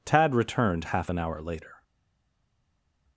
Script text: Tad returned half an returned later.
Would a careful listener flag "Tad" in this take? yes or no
no